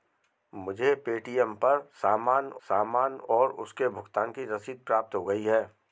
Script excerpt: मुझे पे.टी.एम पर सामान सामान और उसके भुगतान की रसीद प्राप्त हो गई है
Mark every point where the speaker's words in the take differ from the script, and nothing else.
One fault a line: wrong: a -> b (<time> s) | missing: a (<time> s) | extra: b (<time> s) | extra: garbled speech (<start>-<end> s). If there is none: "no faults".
no faults